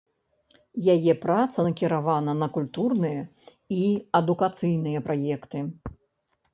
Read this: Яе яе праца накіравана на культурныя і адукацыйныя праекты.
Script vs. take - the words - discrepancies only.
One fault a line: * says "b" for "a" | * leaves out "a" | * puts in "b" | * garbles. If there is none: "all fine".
* leaves out "яе"